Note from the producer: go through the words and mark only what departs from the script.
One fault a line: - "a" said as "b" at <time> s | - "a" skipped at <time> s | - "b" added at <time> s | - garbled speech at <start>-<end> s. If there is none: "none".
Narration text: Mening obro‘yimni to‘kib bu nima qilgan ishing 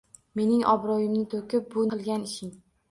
- "nima" skipped at 1.9 s